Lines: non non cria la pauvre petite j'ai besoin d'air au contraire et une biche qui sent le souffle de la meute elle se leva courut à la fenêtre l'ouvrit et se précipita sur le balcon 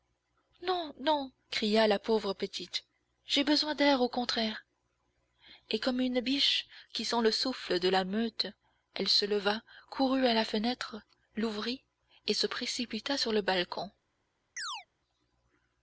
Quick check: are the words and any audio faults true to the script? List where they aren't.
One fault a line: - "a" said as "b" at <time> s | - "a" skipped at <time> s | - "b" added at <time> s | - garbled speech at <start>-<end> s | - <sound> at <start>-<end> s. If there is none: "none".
- "comme" added at 5.8 s
- chirp at 14.6-14.9 s